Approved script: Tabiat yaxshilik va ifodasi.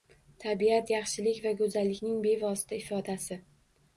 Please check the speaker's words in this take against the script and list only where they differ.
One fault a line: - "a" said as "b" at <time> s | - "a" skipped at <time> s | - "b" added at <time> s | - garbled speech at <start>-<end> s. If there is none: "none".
- "go'zallikning bevosita" added at 1.6 s